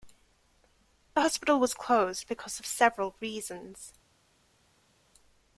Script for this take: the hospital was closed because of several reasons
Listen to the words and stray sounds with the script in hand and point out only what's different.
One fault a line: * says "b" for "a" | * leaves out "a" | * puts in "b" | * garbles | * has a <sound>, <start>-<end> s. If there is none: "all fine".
all fine